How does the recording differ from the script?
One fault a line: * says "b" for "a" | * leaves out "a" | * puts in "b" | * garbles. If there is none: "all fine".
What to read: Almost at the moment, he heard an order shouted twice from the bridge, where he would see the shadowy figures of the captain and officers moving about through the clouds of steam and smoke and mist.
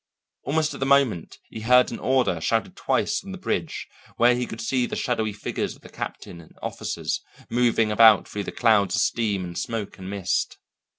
* says "could" for "would"